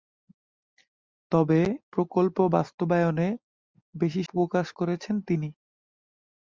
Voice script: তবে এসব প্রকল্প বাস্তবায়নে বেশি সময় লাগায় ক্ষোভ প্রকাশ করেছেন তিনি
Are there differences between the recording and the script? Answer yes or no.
yes